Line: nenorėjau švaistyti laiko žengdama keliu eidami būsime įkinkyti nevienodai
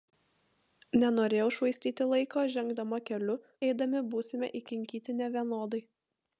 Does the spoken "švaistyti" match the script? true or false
true